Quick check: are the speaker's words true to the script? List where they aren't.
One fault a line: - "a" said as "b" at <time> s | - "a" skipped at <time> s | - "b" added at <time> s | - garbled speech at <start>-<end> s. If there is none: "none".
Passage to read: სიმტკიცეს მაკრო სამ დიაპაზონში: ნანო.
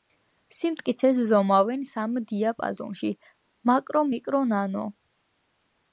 - "მაკრო" said as "ზომავენ" at 1.3 s
- "მაკრო მიკრო" added at 3.7 s